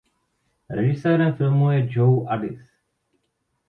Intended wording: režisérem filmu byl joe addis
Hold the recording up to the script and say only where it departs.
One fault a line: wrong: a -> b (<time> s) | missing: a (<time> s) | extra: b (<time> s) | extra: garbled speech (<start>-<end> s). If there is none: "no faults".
wrong: byl -> je (1.7 s)